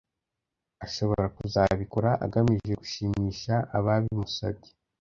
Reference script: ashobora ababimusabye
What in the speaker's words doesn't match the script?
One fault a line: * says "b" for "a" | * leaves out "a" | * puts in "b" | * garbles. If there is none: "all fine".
* puts in "kuzabikora agamije gushimisha"